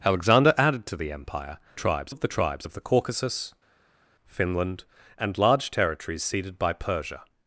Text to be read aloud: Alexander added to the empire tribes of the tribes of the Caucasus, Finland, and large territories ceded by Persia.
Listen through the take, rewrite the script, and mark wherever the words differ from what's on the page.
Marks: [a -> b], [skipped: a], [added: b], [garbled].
Alexander added to the empire tribes of the tribes of the Caucasus, Finland, and large territories ceded by Persia.